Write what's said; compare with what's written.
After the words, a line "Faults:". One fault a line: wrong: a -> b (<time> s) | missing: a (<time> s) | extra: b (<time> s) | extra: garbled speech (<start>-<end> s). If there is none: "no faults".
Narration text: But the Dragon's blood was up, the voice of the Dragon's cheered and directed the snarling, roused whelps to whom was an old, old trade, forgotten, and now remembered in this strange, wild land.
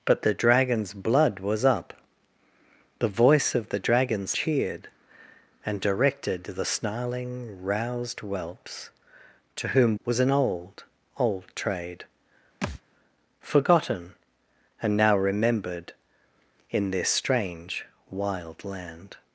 But the Dragon's blood was up, the voice of the Dragon's cheered and directed the snarling, roused whelps to whom was an old, old trade, forgotten, and now remembered in this strange, wild land.
Faults:
no faults